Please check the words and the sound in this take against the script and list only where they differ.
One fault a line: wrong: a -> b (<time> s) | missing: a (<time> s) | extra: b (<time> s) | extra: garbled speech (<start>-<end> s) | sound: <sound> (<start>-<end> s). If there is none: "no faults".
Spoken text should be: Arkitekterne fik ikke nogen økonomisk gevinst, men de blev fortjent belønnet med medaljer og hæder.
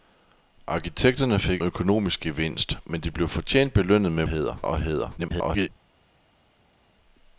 missing: ikke nogen (1.6 s)
wrong: medaljer -> hæder (4.3 s)
extra: garbled speech (5.2-5.7 s)